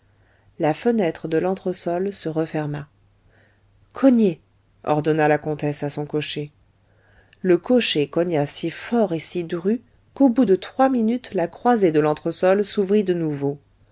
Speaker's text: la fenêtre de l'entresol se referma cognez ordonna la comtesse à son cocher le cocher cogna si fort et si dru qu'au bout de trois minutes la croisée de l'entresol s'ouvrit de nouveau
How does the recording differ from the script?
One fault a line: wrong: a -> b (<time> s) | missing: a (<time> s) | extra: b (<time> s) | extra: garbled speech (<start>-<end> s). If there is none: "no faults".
no faults